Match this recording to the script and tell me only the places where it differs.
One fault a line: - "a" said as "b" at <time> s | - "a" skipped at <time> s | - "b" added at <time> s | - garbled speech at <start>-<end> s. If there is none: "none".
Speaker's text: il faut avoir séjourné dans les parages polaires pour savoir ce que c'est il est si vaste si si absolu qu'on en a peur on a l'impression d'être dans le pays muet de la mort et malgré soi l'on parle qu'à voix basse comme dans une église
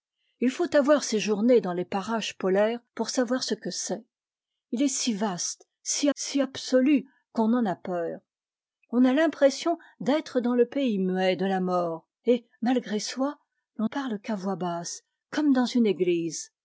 none